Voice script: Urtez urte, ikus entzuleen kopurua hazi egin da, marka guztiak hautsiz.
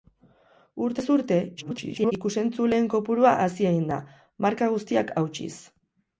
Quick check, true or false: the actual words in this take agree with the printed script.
false